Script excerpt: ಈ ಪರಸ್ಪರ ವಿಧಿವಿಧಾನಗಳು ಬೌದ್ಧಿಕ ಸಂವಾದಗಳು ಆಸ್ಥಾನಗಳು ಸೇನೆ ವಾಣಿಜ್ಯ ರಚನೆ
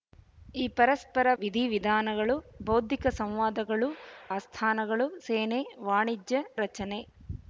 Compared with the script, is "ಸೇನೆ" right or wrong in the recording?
right